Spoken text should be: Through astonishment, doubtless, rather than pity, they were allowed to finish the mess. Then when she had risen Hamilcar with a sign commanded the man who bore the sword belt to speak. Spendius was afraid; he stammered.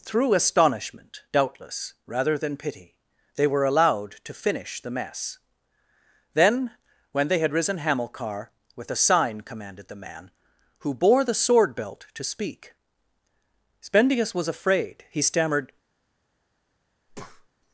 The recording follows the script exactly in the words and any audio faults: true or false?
false